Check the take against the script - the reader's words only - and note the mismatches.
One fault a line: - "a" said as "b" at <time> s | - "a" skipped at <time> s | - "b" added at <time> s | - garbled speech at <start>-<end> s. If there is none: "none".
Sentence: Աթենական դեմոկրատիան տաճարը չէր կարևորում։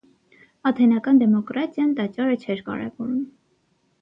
none